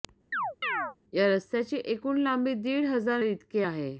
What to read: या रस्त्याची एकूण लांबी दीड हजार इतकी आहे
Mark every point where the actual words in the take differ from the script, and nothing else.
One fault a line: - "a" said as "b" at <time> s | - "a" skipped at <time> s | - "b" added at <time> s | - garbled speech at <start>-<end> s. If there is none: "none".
none